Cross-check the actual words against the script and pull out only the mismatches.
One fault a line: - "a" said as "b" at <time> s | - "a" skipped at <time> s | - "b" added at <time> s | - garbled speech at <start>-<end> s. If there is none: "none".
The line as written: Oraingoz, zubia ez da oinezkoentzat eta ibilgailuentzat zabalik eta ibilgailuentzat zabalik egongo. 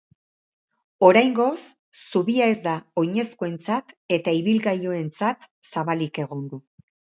- "eta ibilgailuentzat zabalik" skipped at 6.2 s